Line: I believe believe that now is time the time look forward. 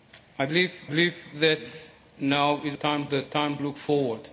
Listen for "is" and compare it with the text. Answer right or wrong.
right